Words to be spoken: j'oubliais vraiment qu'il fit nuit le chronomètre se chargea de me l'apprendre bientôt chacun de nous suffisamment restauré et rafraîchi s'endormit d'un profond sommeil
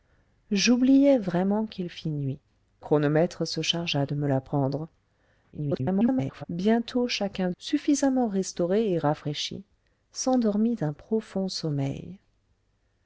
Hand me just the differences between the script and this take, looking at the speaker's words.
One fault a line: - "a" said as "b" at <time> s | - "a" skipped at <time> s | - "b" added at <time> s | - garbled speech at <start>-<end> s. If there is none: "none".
- "le" skipped at 2.4 s
- garbled speech at 5.5-6.4 s
- "de nous" skipped at 7.5 s